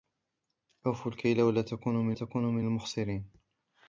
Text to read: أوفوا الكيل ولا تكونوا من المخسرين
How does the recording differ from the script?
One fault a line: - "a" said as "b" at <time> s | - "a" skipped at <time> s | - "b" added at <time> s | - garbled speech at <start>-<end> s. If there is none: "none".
- "تكونوا من" added at 2.1 s